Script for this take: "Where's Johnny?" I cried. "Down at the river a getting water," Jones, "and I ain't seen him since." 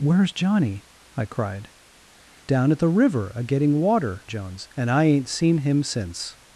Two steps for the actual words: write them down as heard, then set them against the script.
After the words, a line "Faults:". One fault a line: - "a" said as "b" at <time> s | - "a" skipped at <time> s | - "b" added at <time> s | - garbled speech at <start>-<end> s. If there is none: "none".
"Where's Johnny?" I cried. "Down at the river a getting water," Jones, "and I ain't seen him since."
Faults:
none